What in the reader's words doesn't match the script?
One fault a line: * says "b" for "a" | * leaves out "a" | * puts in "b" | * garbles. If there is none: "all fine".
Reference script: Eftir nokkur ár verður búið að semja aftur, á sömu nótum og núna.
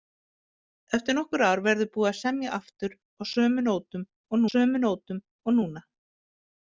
* puts in "sömu nótum og"